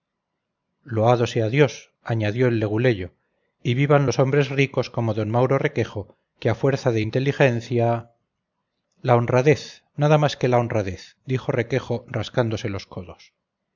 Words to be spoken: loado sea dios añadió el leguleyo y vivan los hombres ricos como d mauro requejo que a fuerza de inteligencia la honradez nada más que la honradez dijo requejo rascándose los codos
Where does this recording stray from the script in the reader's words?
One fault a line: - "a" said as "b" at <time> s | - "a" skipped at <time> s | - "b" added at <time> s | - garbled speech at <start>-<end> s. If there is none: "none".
none